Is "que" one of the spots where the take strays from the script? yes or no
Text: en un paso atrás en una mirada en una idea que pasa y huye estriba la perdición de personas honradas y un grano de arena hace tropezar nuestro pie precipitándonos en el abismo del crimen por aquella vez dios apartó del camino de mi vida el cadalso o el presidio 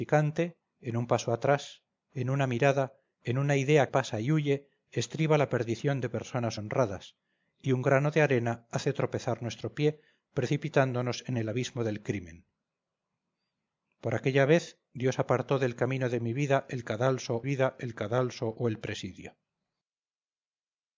yes